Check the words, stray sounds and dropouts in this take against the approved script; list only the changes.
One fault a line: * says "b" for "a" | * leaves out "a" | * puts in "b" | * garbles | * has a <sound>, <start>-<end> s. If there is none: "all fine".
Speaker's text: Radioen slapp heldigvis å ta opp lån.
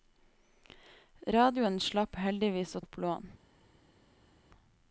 * leaves out "ta"